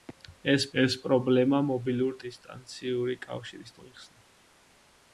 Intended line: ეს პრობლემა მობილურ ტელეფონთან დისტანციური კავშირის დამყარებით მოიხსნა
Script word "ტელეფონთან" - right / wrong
wrong